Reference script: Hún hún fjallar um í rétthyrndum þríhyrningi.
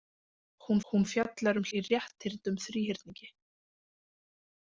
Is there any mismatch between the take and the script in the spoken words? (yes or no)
no